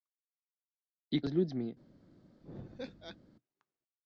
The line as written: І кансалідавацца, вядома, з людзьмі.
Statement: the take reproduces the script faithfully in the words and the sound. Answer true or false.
false